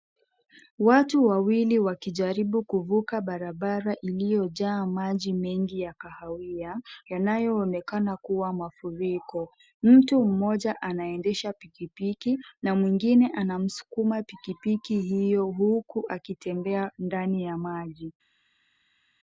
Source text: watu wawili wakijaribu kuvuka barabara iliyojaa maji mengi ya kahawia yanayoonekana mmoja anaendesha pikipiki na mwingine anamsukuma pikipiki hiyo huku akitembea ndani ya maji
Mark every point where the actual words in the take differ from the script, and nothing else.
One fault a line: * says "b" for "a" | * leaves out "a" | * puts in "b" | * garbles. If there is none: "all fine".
* puts in "kuwa mafuriko mtu"